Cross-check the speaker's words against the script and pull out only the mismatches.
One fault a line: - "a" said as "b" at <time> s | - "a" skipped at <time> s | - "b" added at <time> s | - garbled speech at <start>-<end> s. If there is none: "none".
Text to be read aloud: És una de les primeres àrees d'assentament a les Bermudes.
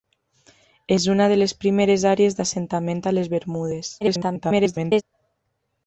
- garbled speech at 4.0-5.0 s